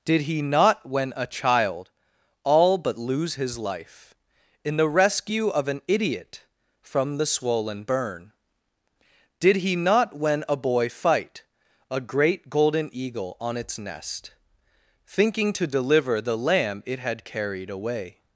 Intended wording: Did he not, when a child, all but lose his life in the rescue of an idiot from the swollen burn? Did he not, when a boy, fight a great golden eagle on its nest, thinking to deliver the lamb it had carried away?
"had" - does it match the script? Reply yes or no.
yes